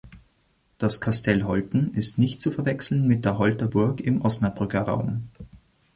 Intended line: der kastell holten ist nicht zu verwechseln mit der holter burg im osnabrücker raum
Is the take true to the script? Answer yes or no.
no